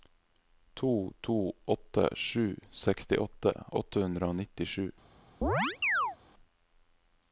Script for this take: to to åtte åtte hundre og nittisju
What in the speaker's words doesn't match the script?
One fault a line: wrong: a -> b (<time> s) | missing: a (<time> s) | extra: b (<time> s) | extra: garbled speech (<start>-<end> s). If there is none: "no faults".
extra: sju sekstiåtte (2.2 s)